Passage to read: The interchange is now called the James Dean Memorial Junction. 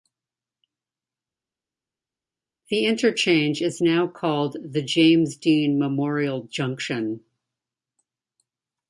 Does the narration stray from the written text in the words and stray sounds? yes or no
no